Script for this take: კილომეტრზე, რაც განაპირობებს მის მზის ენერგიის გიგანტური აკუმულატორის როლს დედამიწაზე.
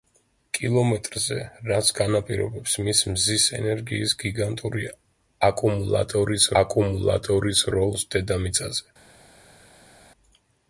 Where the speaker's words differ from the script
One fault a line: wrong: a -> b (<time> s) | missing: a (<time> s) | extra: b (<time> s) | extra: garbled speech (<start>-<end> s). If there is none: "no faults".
extra: აკუმულატორის (6.6 s)